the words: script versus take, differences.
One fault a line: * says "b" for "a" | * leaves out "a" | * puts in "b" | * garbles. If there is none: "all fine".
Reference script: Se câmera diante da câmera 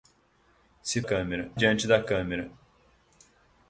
all fine